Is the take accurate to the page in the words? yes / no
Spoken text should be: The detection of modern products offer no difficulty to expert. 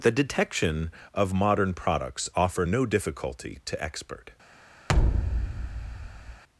yes